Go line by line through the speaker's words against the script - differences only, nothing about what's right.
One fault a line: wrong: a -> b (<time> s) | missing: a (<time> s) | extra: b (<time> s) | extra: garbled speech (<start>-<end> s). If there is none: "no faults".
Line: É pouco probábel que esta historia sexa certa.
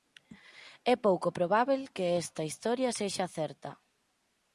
no faults